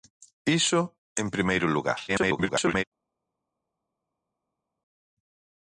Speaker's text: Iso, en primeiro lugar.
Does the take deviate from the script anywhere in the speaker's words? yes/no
yes